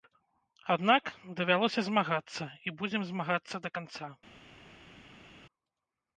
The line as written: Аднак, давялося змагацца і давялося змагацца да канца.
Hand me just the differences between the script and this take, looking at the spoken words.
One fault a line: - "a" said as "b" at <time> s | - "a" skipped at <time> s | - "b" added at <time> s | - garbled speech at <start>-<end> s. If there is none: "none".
- "давялося" said as "будзем" at 2.8 s